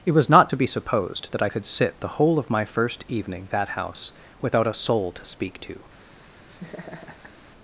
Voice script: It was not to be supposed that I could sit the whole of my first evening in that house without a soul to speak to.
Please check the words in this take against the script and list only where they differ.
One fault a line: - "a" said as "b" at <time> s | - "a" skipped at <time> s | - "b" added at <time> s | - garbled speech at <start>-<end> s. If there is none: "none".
- "in" skipped at 3.5 s